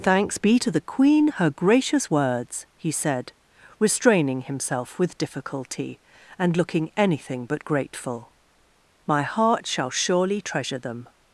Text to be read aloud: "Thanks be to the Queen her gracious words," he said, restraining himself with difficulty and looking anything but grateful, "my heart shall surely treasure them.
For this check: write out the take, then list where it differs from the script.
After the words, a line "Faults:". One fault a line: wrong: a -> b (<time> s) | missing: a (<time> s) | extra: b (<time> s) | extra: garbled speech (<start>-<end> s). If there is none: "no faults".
"Thanks be to the Queen her gracious words," he said, restraining himself with difficulty and looking anything but grateful, "my heart shall surely treasure them.
Faults:
no faults